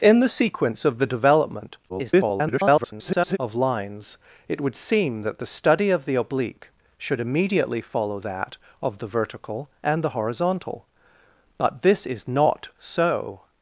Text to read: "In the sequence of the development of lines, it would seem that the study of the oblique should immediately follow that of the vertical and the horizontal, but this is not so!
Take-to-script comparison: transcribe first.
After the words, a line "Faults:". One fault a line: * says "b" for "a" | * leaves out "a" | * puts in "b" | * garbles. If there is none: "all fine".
"In the sequence of the development [garbled] of lines, it would seem that the study of the oblique should immediately follow that of the vertical and the horizontal, but this is not so!
Faults:
* garbles